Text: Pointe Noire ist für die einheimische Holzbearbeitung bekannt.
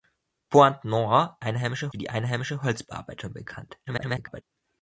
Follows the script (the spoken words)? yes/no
no